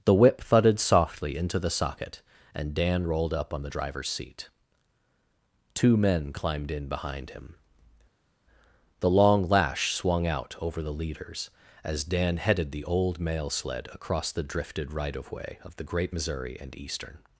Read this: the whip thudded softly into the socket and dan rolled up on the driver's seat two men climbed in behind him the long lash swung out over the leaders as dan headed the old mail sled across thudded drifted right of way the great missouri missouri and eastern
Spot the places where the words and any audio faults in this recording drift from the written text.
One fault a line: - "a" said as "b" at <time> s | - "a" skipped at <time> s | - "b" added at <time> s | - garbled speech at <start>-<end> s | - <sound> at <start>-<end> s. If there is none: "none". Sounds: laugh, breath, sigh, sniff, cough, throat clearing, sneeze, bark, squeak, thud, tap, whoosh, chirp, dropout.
- "thudded" said as "the" at 14.3 s
- "of" added at 15.6 s
- "missouri" skipped at 16.6 s